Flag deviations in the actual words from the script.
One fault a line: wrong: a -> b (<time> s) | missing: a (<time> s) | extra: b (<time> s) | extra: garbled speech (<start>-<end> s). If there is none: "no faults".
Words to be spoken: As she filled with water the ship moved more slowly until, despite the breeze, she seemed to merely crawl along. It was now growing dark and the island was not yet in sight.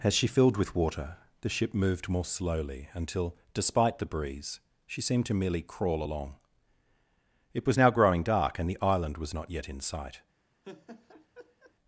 no faults